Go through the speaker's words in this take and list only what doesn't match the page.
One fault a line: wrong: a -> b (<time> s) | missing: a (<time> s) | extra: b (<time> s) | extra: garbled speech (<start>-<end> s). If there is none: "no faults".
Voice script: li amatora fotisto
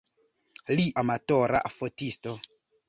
no faults